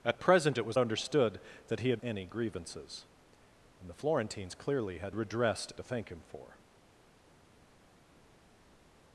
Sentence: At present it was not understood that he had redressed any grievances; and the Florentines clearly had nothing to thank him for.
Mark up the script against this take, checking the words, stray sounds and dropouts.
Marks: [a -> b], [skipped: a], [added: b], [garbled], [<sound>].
At present it was [skipped: not] understood that he had [skipped: redressed] any grievances; and the Florentines clearly had [nothing -> redressed] to thank him for.